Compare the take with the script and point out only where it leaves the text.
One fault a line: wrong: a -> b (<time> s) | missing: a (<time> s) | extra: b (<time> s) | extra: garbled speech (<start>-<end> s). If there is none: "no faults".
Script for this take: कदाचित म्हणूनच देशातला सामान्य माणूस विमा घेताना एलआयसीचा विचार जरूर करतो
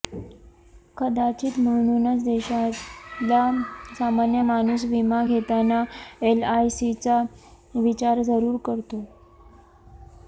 no faults